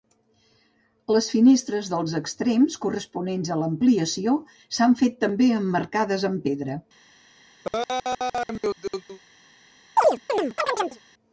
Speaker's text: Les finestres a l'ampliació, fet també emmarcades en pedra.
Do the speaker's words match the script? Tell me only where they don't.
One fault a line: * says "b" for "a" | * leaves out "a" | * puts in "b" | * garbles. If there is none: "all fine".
* puts in "dels extrems corresponents"
* puts in "s'han"
* says "amb" for "en"